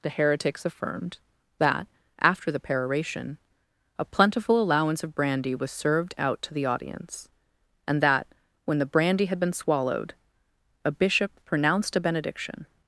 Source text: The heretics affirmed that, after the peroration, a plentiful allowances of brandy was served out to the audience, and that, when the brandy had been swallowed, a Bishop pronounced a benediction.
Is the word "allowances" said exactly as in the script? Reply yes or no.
no